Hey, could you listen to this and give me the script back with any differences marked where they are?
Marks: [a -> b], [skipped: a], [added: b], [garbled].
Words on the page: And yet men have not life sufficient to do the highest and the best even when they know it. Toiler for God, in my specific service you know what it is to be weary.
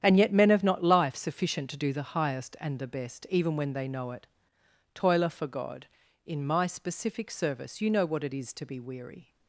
And yet men have not life sufficient to do the highest and the best even when they know it. Toiler for God, in my specific service you know what it is to be weary.